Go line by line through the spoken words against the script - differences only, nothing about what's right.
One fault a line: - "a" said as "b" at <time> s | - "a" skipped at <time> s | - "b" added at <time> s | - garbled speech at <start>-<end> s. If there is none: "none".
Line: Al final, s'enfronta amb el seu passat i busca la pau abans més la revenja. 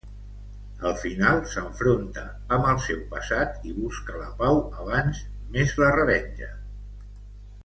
none